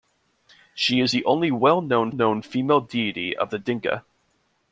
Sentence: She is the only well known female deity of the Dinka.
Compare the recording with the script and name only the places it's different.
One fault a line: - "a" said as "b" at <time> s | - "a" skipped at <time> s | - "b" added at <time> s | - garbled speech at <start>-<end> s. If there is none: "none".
- "known" added at 2.1 s